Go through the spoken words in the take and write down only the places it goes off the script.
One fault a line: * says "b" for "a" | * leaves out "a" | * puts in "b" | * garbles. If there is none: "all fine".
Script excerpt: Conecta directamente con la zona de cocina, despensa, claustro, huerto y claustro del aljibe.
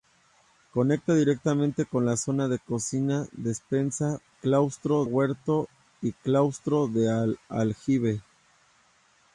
all fine